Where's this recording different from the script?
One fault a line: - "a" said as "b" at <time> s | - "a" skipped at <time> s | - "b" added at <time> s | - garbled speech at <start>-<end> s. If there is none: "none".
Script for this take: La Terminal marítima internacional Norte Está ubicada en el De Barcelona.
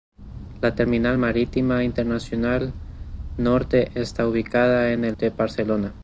none